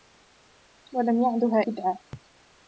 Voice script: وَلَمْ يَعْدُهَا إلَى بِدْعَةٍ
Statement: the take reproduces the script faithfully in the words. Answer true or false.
false